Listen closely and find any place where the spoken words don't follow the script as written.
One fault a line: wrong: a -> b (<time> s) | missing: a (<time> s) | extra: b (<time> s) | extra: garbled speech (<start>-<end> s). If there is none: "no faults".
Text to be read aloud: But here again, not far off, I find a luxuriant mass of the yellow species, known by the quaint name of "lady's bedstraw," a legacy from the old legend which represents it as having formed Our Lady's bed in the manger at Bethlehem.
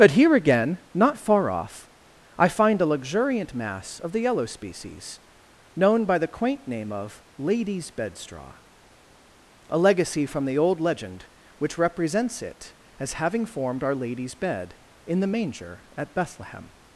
no faults